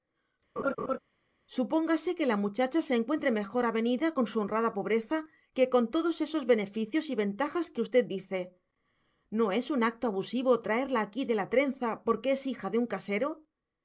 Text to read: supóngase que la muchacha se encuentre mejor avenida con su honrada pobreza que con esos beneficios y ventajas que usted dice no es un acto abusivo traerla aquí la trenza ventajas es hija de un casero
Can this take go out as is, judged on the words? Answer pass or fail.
fail